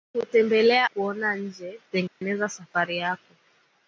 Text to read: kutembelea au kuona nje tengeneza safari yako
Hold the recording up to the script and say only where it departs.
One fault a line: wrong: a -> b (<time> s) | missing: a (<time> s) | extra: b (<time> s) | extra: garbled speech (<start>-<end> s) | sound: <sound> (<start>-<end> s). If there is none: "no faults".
missing: au (0.9 s)
sound: dropout (2.1-2.2 s)